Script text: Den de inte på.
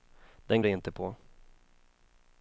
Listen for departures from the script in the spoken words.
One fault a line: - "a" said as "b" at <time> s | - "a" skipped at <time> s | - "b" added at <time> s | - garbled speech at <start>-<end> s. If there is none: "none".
none